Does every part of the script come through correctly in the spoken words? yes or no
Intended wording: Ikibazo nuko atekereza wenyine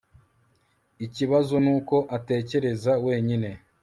yes